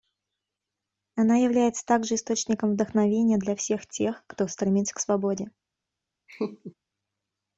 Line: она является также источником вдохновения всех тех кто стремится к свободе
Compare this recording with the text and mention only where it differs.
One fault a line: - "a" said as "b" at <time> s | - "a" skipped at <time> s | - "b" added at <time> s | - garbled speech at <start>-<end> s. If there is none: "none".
- "для" added at 3.4 s